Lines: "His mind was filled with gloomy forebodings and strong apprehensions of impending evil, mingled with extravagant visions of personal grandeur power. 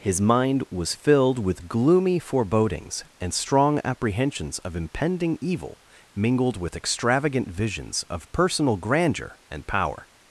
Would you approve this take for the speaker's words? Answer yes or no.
no